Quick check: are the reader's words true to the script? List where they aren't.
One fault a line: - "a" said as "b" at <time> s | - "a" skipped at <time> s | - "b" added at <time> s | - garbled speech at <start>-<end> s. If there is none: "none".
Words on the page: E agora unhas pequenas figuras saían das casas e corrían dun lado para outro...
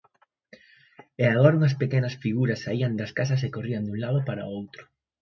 none